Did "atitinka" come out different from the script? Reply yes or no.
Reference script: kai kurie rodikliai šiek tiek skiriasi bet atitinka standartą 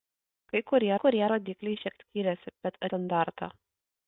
yes